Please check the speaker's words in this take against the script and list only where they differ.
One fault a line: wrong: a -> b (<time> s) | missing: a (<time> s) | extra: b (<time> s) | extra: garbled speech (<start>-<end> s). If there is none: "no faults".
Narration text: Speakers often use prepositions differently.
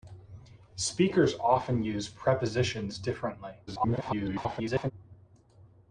extra: garbled speech (3.7-4.9 s)